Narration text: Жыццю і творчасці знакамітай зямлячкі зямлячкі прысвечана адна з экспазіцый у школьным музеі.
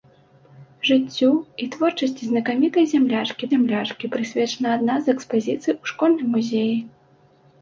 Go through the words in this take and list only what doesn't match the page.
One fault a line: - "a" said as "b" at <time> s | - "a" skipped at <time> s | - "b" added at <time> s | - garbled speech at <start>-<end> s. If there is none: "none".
none